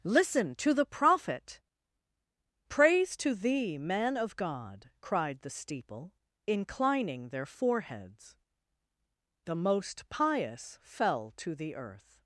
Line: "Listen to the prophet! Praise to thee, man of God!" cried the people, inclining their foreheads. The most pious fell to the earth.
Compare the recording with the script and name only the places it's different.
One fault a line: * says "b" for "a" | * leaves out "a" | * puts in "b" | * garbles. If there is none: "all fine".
* says "steeple" for "people"